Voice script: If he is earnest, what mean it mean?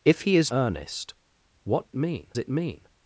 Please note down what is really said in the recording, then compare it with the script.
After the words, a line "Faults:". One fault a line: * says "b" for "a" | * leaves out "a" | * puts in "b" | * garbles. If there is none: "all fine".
If he is earnest, what mean it mean?
Faults:
all fine